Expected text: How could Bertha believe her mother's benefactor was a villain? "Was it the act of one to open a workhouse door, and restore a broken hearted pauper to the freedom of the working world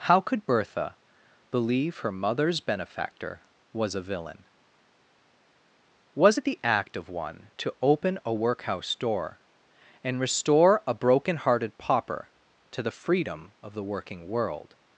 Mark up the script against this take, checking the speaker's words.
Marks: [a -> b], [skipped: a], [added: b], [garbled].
How could Bertha believe her mother's benefactor was a villain? "Was it the act of one to open a workhouse door, and restore a broken hearted pauper to the freedom of the working world